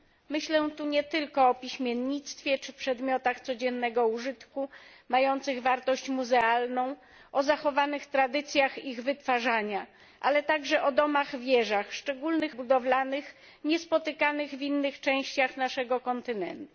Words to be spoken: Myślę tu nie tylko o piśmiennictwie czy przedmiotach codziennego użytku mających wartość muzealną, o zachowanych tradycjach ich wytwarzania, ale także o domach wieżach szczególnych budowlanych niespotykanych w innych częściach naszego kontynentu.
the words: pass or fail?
pass